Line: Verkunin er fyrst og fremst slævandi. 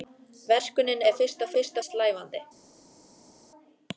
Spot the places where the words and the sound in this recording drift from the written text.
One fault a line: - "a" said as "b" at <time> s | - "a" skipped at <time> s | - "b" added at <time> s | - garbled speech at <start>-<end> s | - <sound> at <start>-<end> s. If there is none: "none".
- "fremst" said as "fyrst" at 1.5 s